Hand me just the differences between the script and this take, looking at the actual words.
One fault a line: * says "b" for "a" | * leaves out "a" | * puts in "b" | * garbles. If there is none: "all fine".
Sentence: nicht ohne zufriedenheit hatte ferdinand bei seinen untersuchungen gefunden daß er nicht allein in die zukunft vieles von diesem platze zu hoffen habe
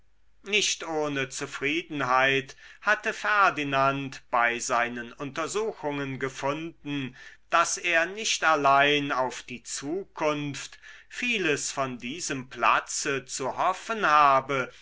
* says "auf" for "in"